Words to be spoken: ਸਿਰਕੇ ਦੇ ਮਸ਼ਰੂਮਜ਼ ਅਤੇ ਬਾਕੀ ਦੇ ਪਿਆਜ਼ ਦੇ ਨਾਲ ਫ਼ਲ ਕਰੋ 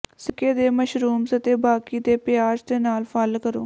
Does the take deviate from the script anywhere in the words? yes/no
no